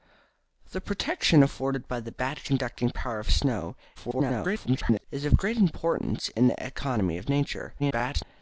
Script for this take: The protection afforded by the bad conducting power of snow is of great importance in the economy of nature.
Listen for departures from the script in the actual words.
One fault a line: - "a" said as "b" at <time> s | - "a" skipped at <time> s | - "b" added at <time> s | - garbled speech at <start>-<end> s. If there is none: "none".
- garbled speech at 4.0-5.0 s
- garbled speech at 7.8-8.2 s